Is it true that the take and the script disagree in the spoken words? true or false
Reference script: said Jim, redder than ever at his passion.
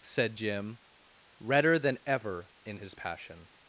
true